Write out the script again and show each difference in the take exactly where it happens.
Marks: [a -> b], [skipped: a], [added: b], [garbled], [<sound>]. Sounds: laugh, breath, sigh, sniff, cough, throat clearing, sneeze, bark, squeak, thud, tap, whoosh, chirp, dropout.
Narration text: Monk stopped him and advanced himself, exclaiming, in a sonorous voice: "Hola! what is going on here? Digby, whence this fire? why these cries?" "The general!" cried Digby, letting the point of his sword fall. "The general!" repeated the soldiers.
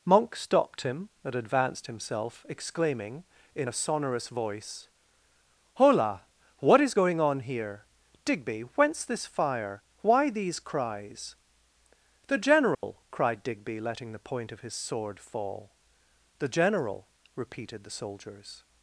Monk stopped him and advanced himself, exclaiming, in a sonorous voice: "Hola! what is going on here? Digby, whence this fire? why these cries?" "The general!" [dropout] cried Digby, letting the point of his sword fall. "The general!" repeated the soldiers.